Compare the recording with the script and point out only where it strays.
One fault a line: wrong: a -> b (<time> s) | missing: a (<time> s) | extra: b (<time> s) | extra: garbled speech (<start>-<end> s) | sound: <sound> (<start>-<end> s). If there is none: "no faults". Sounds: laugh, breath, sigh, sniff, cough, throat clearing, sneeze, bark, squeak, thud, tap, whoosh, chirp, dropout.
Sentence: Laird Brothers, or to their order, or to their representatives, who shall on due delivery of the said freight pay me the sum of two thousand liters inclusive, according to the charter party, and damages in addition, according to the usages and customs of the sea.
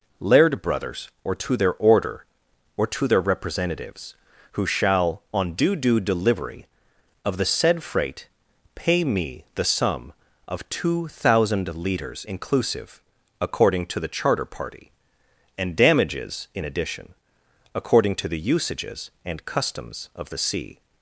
extra: due (5.8 s)